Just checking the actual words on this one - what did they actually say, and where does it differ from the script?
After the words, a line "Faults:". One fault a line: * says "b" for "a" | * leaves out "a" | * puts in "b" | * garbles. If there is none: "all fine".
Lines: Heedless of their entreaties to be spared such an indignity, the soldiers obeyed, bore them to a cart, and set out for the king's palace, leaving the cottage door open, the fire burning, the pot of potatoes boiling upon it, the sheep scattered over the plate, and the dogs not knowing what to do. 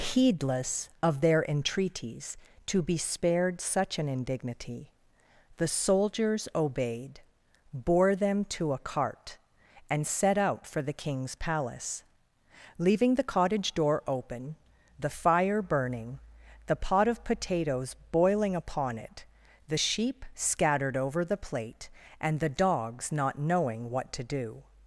Heedless of their entreaties to be spared such an indignity, the soldiers obeyed, bore them to a cart, and set out for the king's palace, leaving the cottage door open, the fire burning, the pot of potatoes boiling upon it, the sheep scattered over the plate, and the dogs not knowing what to do.
Faults:
all fine